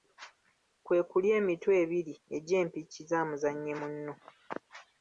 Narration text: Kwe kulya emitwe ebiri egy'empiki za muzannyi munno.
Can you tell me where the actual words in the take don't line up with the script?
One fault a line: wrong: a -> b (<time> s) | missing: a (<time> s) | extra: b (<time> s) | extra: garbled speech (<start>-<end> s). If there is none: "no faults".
no faults